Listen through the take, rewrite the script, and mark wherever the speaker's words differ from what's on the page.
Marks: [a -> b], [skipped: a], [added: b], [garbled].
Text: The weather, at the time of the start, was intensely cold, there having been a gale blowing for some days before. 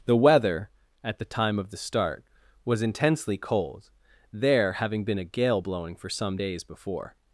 The weather, at the time of the start, was intensely cold, there having been a gale blowing for some days before.